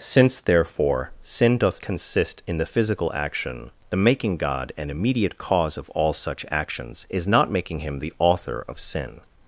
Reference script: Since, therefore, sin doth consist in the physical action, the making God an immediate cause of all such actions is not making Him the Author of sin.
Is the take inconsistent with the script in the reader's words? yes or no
no